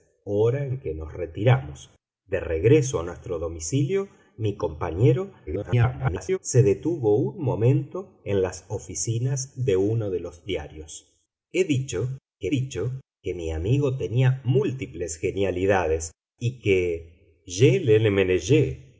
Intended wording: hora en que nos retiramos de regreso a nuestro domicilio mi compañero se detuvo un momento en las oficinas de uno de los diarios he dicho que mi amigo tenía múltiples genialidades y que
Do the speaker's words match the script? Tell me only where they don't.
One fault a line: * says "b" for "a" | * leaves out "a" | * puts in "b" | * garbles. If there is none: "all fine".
* garbles
* puts in "dicho que"